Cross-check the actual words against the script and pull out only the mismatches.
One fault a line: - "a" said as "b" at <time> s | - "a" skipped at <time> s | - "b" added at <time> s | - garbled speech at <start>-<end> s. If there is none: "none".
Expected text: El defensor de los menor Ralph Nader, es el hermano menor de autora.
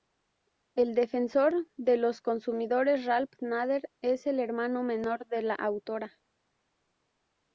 - "menor" said as "consumidores" at 2.2 s
- "la" added at 5.4 s